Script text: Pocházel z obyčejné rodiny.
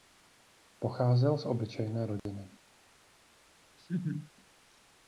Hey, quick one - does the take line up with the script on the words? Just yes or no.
yes